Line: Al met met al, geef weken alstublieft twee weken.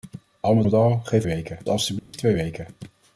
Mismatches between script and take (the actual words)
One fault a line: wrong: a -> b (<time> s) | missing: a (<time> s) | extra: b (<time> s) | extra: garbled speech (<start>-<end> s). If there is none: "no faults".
no faults